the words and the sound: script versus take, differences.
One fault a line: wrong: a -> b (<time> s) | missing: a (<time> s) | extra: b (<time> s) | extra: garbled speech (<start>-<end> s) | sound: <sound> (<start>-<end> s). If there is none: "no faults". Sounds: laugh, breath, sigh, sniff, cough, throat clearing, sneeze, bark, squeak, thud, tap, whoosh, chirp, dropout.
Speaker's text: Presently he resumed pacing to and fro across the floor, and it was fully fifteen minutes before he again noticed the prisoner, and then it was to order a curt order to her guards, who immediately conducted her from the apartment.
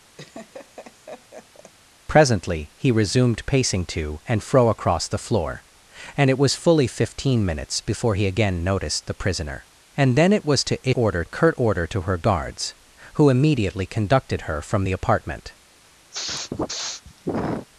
sound: laugh (0.2-1.7 s)
sound: sniff (16.1-17.7 s)